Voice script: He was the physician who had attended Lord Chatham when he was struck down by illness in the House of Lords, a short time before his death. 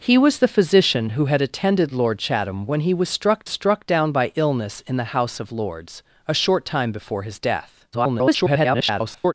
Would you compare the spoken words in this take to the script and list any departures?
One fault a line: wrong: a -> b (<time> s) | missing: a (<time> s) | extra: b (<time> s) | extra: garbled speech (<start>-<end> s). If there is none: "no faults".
extra: struck (3.5 s)
extra: garbled speech (7.9-9.3 s)